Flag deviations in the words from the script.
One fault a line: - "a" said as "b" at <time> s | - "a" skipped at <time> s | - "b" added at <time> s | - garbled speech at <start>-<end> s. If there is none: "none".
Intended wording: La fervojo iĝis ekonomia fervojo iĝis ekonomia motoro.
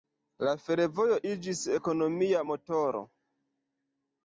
- "fervojo iĝis ekonomia" skipped at 2.5 s